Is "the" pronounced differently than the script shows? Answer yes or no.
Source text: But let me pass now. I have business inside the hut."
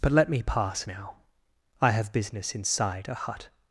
yes